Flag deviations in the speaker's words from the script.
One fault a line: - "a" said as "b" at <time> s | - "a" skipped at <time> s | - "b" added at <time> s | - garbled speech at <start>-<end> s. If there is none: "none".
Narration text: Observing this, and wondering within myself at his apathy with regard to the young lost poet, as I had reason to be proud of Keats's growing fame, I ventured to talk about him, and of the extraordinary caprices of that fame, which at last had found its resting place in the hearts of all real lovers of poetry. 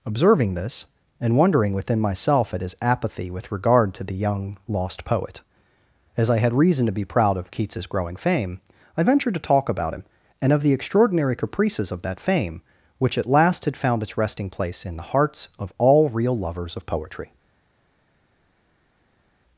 none